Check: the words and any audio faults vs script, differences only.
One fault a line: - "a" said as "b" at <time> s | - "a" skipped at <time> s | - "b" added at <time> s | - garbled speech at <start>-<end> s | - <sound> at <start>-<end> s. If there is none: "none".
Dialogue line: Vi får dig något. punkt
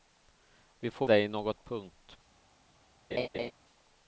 - laugh at 3.1-3.5 s